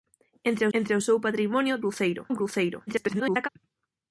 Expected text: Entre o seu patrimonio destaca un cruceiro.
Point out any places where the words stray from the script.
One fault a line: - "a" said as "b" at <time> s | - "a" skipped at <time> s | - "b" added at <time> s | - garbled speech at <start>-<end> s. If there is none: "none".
- "entre" added at 0.8 s
- "destaca" said as "cruceiro" at 1.8 s
- garbled speech at 2.9-3.5 s